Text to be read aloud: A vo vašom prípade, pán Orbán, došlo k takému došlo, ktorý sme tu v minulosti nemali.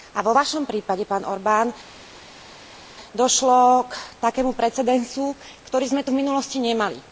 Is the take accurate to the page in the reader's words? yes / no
no